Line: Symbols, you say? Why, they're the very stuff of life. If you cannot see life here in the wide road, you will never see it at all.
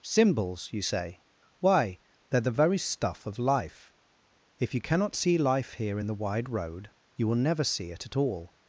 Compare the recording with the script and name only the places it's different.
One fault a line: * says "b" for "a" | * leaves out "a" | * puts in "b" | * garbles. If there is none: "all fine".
all fine